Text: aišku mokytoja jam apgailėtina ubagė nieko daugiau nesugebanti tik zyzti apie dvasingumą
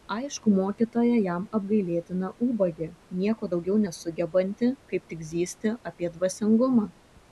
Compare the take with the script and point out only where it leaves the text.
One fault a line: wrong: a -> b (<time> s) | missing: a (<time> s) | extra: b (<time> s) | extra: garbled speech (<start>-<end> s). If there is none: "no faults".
extra: kaip (4.9 s)